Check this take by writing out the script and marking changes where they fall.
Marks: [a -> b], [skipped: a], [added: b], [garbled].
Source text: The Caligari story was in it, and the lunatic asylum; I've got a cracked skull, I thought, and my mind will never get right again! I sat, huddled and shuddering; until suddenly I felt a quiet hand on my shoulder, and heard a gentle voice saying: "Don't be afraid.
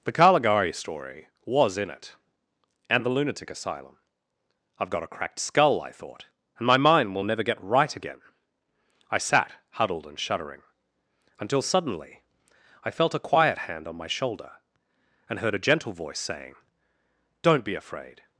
The Caligari story was in it, and the lunatic asylum; I've got a cracked skull, I thought, and my mind will never get right again! I sat, huddled and shuddering; until suddenly I felt a quiet hand on my shoulder, and heard a gentle voice saying: "Don't be afraid.